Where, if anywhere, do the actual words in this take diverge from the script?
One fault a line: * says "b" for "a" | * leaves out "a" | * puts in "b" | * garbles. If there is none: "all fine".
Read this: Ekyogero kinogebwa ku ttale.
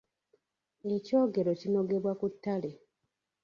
all fine